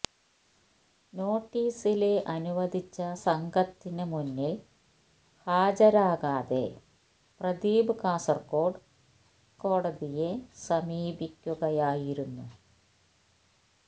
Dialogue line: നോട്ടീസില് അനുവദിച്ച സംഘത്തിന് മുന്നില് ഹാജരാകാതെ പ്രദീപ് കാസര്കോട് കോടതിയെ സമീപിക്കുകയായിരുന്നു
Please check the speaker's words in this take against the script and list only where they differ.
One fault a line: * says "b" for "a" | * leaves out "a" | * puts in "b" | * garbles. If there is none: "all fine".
all fine